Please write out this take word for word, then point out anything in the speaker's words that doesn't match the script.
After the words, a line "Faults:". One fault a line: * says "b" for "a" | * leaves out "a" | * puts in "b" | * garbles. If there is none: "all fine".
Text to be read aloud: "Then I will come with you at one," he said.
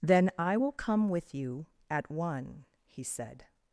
"Then I will come with you at one," he said.
Faults:
all fine